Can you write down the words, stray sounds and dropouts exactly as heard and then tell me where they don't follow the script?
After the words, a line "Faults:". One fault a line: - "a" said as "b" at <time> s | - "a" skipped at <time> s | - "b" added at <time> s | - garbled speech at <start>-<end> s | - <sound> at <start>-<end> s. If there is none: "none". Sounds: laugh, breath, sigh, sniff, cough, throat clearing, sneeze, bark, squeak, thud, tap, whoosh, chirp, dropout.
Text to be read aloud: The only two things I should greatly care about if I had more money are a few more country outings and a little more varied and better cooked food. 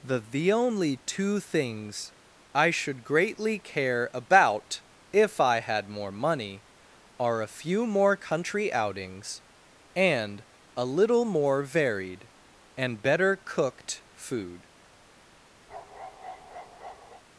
The the only two things I should greatly care about if I had more money are a few more country outings and a little more varied and better cooked food.
Faults:
- "the" added at 0.2 s
- bark at 15.7-17.2 s